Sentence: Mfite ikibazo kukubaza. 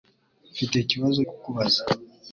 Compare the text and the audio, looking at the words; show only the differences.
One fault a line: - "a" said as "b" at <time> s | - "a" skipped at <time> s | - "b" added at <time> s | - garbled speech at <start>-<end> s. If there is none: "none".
none